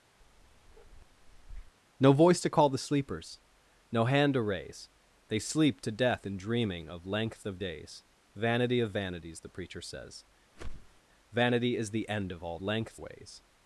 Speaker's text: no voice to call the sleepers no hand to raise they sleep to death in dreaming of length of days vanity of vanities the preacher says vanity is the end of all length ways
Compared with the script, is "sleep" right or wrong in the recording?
right